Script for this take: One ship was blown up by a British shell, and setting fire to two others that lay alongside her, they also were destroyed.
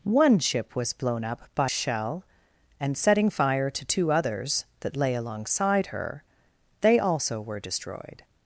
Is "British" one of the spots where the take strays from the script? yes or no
yes